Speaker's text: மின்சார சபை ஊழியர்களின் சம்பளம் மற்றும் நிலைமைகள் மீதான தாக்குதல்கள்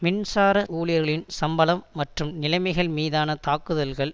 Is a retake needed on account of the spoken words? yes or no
yes